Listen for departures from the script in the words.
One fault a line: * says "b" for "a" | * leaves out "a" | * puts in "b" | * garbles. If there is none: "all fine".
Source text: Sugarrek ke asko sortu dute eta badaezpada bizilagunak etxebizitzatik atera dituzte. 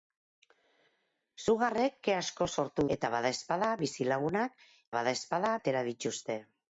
* leaves out "dute"
* says "badaezpada" for "etxebizitzatik"